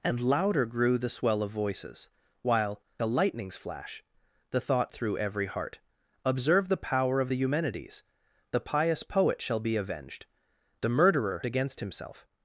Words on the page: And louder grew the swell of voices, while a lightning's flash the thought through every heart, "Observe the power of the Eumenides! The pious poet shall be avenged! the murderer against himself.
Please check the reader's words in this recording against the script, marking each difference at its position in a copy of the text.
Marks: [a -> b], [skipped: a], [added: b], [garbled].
And louder grew the swell of voices, while a lightning's flash the thought through every heart, "Observe the power of the Eumenides! The pious poet shall be avenged! the murderer against himself.